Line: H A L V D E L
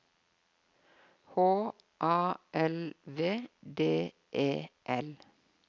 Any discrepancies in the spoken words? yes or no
no